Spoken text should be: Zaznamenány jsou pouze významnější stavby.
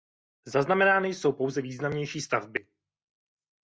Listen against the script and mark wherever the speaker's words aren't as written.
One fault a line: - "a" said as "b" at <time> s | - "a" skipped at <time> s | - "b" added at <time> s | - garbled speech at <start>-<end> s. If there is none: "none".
none